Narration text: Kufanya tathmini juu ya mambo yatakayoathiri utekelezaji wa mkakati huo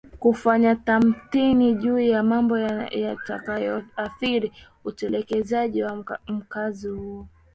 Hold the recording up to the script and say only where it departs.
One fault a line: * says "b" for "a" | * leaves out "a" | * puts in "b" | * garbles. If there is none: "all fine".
all fine